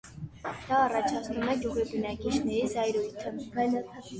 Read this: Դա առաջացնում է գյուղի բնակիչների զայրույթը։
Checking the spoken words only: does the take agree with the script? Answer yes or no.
yes